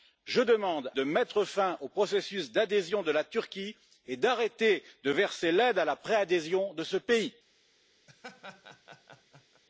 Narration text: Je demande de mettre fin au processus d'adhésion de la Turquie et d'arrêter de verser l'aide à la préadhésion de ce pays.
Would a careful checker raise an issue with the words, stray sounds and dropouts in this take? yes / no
yes